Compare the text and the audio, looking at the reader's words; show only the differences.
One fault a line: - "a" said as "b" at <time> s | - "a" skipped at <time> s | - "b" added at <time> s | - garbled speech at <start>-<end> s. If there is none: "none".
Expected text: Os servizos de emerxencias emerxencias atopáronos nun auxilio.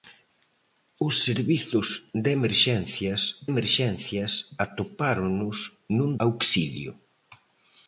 none